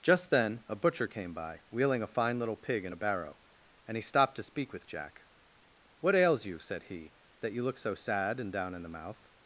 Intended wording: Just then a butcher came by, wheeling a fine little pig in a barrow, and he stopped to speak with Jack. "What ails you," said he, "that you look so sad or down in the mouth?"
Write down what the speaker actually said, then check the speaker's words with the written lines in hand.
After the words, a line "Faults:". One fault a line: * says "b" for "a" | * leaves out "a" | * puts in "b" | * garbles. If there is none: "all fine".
Just then a butcher came by, wheeling a fine little pig in a barrow, and he stopped to speak with Jack. "What ails you," said he, "that you look so sad and down in the mouth?"
Faults:
* says "and" for "or"